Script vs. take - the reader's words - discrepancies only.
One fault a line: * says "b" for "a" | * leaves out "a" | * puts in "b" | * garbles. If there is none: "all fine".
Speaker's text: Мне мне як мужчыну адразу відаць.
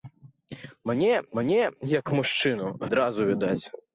all fine